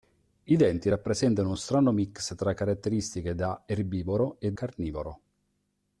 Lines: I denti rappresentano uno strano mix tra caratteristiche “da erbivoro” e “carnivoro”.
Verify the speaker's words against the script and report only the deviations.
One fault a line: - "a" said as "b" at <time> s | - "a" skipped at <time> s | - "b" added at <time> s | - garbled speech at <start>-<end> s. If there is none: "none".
none